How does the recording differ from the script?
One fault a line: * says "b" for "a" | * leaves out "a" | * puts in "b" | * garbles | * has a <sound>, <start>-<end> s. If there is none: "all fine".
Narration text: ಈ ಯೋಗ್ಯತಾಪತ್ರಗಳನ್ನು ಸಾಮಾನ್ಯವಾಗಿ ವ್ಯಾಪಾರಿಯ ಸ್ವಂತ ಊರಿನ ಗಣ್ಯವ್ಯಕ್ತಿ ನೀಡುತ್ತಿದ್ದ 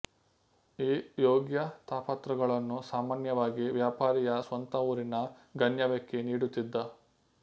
all fine